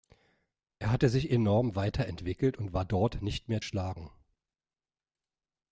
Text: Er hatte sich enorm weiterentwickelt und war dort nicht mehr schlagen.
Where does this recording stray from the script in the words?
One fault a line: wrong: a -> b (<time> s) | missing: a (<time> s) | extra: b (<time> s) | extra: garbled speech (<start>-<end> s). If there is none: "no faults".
no faults